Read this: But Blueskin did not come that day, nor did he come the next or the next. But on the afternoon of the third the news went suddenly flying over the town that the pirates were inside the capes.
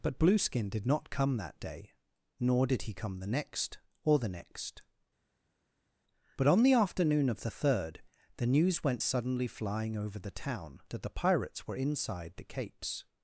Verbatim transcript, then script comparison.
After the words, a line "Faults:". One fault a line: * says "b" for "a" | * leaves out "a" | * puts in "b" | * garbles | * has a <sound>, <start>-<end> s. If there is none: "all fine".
But Blueskin did not come that day, nor did he come the next or the next. But on the afternoon of the third the news went suddenly flying over the town that the pirates were inside the capes.
Faults:
all fine